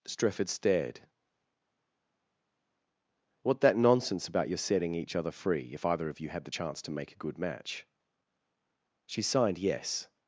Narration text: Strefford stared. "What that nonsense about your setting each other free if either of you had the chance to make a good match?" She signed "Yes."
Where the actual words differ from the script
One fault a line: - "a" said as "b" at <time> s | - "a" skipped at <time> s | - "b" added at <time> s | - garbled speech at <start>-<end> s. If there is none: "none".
none